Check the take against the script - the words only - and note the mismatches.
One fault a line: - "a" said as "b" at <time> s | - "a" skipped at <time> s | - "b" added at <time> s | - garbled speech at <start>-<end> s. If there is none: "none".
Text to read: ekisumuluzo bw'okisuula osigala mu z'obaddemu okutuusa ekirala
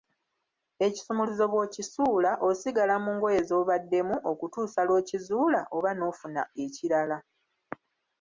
- "ngoye" added at 3.1 s
- "lw'okizuula oba n'ofuna" added at 4.9 s